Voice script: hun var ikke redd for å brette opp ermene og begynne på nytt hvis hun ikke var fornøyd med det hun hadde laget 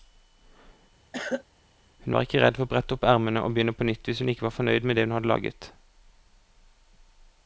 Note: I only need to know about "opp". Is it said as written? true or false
true